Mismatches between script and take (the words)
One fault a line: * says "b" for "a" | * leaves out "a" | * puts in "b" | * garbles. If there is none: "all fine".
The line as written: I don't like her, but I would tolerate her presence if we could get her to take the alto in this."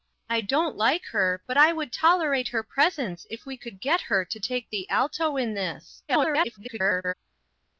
* garbles